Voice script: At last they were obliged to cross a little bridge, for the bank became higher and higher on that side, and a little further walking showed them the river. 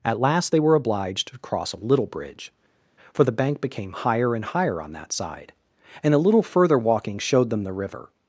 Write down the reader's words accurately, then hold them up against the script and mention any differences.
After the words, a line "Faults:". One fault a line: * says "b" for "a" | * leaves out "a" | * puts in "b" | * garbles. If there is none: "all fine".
At last they were obliged to cross a little bridge, for the bank became higher and higher on that side, and a little further walking showed them the river.
Faults:
all fine